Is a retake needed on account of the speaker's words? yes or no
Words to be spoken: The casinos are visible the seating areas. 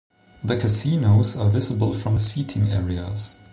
yes